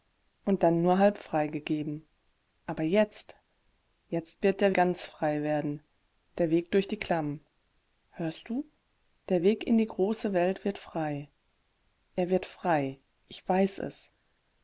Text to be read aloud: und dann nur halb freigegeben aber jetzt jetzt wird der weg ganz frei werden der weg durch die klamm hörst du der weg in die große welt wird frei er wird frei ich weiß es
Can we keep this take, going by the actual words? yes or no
no